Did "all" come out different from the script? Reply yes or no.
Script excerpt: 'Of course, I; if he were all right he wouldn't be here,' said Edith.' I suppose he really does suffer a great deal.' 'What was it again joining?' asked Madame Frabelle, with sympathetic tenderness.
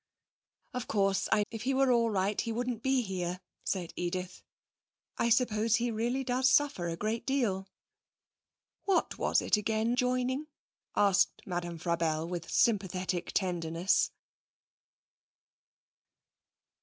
no